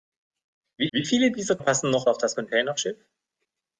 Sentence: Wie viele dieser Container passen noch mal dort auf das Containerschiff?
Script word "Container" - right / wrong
wrong